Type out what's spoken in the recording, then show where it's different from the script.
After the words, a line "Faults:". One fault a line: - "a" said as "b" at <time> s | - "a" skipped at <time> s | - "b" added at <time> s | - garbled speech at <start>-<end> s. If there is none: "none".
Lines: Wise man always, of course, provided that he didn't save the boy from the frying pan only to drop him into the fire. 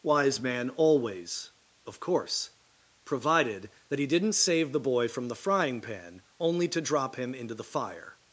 Wise man always, of course, provided that he didn't save the boy from the frying pan only to drop him into the fire.
Faults:
none